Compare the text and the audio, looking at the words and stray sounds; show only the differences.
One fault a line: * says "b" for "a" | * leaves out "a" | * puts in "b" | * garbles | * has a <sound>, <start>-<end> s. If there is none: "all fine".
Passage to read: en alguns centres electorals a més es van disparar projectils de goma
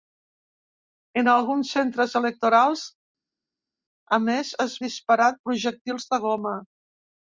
* leaves out "van"